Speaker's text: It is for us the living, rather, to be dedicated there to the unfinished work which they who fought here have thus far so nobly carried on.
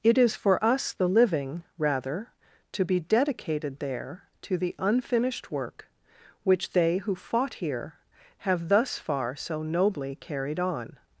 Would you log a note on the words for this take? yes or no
no